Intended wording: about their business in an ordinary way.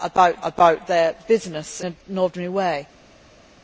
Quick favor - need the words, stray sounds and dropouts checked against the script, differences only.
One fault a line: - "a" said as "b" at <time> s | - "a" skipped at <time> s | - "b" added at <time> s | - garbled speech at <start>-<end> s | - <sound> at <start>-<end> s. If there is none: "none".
- "about" added at 0.4 s
- "in" skipped at 1.8 s